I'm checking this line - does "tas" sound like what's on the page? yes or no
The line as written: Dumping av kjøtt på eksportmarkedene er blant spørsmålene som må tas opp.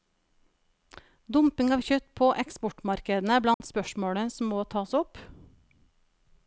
yes